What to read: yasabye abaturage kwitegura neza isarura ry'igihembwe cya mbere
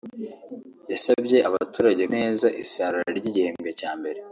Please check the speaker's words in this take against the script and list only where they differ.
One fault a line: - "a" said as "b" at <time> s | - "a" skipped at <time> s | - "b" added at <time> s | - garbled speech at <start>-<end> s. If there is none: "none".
- "kwitegura" skipped at 2.0 s